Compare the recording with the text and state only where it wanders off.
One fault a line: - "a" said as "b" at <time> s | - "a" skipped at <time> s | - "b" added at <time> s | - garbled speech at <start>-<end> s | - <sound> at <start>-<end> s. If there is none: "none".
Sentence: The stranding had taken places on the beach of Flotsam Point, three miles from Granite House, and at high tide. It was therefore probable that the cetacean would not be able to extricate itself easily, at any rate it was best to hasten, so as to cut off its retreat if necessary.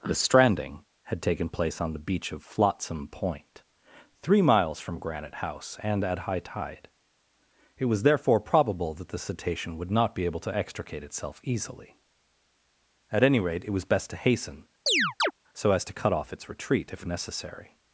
- "places" said as "place" at 1.5 s
- chirp at 14.9-15.3 s